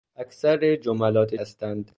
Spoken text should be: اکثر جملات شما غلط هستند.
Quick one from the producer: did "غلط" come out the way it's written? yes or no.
no